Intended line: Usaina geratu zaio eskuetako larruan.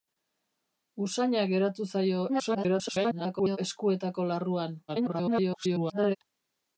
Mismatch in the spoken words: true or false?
true